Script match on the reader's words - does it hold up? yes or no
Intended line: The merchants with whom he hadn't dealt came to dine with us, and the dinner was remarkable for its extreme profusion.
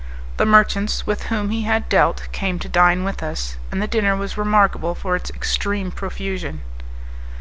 no